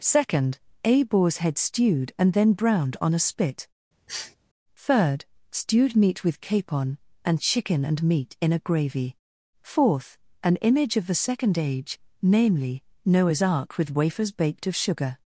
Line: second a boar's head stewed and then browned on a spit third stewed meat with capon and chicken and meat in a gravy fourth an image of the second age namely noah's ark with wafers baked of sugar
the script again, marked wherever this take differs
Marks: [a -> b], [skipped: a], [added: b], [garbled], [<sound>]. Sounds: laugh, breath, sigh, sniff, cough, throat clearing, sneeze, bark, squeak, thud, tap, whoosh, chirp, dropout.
second a boar's head stewed and then browned on a spit [sniff] third stewed meat with capon and chicken and meat in a gravy fourth an image of the second age namely noah's ark with wafers baked of sugar